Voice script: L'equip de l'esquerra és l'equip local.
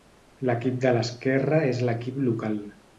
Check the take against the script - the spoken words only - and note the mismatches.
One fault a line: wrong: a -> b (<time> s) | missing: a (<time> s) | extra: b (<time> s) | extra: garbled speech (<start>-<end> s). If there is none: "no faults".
no faults